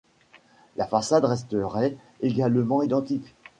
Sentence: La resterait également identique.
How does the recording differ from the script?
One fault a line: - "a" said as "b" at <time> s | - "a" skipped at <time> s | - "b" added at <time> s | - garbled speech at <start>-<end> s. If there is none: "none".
- "façade" added at 0.8 s